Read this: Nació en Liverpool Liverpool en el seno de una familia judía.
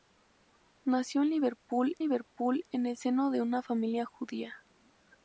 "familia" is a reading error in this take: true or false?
false